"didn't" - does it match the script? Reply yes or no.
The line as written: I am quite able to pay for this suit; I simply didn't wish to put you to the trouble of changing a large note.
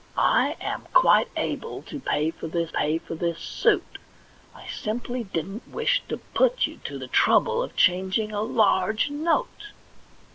yes